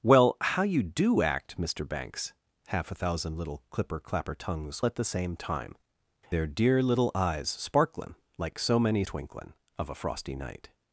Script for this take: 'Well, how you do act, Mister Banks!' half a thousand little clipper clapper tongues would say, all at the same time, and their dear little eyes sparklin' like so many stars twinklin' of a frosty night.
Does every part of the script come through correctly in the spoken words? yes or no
no